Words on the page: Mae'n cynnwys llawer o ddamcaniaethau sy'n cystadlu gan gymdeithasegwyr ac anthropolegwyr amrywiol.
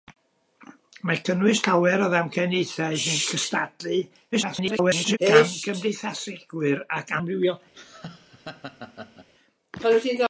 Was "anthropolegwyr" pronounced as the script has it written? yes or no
no